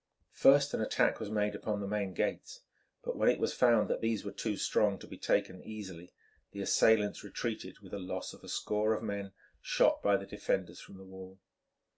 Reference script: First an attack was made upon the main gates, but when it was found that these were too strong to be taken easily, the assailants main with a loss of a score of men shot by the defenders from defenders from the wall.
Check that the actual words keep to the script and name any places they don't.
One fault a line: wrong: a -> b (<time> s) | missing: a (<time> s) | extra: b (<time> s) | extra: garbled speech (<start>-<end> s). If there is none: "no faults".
wrong: main -> retreated (7.2 s)
missing: defenders from (11.0 s)